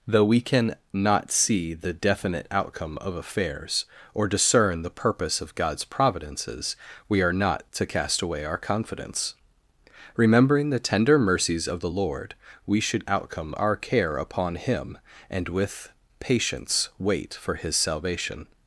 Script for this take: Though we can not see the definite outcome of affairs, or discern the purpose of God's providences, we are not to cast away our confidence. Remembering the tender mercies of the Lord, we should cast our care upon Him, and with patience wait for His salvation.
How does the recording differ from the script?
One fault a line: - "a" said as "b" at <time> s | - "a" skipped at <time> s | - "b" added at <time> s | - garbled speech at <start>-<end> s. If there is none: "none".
- "cast" said as "outcome" at 13.1 s